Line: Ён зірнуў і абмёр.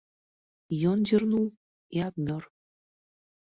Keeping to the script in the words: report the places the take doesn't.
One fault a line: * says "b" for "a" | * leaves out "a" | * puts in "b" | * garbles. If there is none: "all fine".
all fine